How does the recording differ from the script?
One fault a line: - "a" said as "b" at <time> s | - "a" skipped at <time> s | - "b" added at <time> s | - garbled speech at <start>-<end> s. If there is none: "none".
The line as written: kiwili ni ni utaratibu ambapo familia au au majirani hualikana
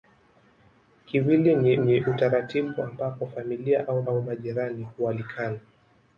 none